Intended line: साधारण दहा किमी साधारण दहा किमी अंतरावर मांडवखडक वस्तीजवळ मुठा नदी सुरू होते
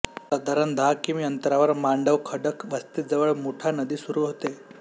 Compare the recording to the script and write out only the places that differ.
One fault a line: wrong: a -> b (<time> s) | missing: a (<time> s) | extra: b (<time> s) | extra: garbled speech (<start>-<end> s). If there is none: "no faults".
missing: साधारण दहा किमी (1.2 s)